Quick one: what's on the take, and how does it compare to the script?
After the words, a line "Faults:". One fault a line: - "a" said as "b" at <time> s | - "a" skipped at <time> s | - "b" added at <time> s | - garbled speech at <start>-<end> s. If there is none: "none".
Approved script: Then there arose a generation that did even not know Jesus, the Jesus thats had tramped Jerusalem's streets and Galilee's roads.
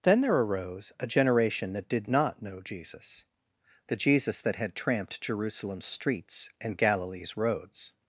Then there arose a generation that did not know Jesus, the Jesus that had tramped Jerusalem's streets and Galilee's roads.
Faults:
- "even" skipped at 2.1 s
- "thats" said as "that" at 4.4 s